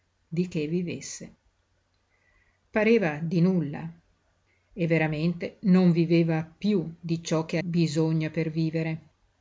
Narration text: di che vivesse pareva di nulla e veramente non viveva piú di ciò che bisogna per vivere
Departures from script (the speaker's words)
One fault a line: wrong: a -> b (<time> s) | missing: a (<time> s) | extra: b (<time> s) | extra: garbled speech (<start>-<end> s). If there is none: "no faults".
no faults